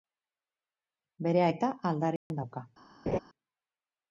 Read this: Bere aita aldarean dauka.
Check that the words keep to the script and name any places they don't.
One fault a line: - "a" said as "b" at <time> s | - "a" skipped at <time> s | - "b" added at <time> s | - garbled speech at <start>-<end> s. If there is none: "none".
none